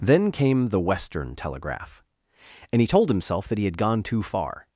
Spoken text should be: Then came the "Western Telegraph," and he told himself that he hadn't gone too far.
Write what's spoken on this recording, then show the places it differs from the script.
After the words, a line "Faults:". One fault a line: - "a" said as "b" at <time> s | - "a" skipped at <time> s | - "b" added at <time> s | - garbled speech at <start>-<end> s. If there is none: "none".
Then came the "Western Telegraph," and he told himself that he had gone too far.
Faults:
- "hadn't" said as "had" at 3.6 s